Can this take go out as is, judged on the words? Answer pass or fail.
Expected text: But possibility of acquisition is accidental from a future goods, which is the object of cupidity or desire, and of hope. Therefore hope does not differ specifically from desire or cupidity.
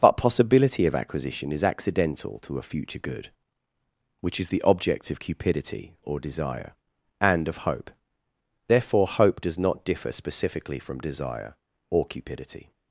fail